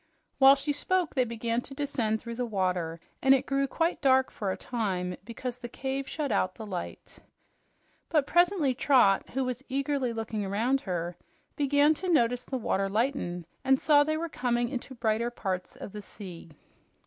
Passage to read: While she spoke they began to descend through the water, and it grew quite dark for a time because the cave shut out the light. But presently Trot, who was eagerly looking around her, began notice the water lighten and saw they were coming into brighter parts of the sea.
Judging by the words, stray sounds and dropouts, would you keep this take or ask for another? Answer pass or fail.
fail